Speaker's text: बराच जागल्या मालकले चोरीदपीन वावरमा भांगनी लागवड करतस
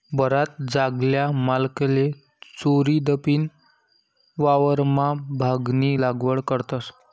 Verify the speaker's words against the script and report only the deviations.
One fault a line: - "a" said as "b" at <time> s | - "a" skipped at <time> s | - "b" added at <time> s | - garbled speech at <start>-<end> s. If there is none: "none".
none